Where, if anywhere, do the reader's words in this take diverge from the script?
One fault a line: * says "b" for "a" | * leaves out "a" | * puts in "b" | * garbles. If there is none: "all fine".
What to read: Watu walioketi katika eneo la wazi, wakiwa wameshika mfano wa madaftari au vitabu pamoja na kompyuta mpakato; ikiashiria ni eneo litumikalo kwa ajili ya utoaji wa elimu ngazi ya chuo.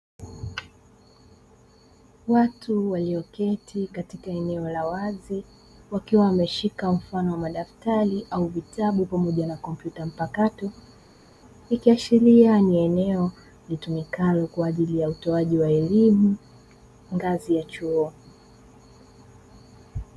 all fine